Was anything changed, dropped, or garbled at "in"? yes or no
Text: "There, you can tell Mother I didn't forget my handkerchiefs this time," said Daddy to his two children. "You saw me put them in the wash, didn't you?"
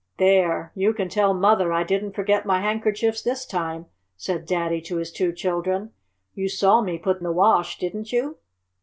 yes